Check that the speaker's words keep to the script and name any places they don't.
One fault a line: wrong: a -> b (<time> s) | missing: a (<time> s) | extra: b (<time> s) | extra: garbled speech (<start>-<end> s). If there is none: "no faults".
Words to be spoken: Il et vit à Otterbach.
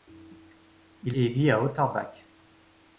no faults